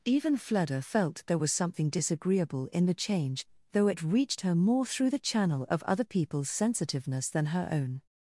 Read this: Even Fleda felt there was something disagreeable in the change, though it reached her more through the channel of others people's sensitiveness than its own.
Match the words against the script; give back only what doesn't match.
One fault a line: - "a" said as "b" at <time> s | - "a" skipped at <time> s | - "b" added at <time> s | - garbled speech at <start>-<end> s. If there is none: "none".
- "others" said as "other" at 5.8 s
- "its" said as "her" at 7.5 s